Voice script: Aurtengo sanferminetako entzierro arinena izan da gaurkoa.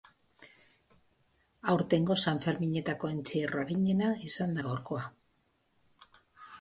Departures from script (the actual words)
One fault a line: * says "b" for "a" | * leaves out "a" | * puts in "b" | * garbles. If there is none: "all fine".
all fine